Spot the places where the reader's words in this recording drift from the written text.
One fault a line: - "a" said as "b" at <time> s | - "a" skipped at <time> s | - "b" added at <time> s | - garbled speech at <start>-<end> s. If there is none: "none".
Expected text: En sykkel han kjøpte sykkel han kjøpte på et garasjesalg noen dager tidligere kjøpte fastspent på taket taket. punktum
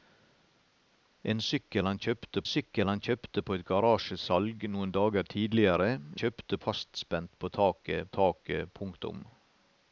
none